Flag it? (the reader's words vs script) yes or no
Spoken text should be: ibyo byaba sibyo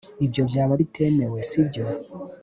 yes